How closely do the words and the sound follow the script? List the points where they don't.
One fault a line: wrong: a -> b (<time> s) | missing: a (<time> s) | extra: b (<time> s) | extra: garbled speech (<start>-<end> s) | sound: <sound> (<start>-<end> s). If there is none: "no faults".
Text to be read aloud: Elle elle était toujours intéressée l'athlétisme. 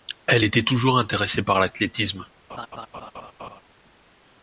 missing: elle (0.5 s)
extra: par (1.4 s)
sound: laugh (2.5-3.6 s)